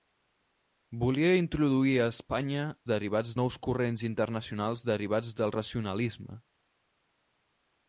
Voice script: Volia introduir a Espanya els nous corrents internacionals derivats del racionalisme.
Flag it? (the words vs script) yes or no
yes